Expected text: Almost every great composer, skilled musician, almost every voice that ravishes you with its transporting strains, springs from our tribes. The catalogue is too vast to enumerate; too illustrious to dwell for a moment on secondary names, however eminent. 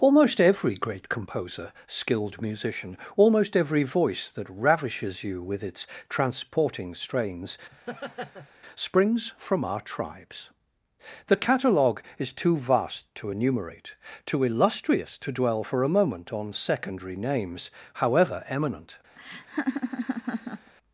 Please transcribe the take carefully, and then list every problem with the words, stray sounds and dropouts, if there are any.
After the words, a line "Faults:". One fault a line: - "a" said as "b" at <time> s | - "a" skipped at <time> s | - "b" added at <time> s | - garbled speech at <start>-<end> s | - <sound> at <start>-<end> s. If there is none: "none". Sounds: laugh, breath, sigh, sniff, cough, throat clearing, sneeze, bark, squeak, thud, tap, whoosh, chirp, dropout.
Almost every great composer, skilled musician, almost every voice that ravishes you with its transporting strains, springs from our tribes. The catalogue is too vast to enumerate; too illustrious to dwell for a moment on secondary names, however eminent.
Faults:
- laugh at 7.7-8.5 s
- laugh at 19.2-20.7 s